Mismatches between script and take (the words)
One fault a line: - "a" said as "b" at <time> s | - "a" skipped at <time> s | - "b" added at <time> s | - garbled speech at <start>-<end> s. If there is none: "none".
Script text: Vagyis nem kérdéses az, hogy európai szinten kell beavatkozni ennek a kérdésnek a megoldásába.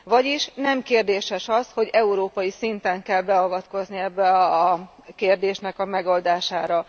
none